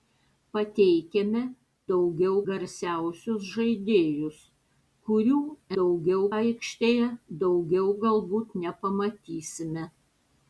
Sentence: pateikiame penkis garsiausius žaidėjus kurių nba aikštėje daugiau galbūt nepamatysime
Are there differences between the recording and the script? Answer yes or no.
yes